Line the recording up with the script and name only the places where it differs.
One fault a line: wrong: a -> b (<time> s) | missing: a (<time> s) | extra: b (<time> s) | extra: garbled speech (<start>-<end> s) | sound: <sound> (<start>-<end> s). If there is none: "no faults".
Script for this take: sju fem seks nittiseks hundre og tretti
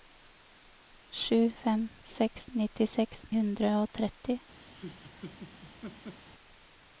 sound: laugh (4.7-6.3 s)